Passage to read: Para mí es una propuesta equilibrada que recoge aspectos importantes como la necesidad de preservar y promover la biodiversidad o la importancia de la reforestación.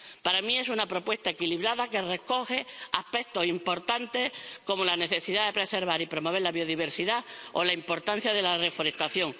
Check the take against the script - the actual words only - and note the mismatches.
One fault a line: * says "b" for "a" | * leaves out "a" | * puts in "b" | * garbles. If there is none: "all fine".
all fine